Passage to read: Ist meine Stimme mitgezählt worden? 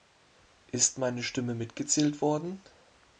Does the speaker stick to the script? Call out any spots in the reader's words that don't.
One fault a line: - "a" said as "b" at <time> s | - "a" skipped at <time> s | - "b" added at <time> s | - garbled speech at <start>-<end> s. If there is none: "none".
none